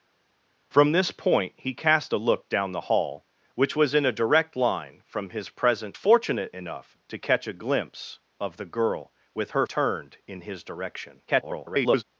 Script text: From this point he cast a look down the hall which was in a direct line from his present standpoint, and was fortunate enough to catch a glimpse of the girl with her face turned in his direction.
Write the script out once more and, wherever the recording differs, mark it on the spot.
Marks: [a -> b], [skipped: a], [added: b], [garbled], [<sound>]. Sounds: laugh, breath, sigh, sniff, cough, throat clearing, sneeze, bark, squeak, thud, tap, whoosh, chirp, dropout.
From this point he cast a look down the hall which was in a direct line from his present [skipped: standpoint, and was] fortunate enough to catch a glimpse of the girl with her [skipped: face] turned in his direction. [garbled]